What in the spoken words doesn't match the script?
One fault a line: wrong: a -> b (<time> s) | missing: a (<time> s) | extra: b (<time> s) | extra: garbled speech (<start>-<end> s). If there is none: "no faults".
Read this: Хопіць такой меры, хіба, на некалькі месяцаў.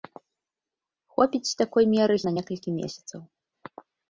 missing: хіба (2.2 s)